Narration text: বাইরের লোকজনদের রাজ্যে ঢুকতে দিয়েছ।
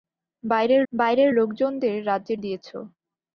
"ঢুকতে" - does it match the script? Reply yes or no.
no